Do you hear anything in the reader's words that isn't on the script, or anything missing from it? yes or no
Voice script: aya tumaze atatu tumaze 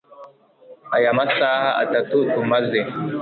yes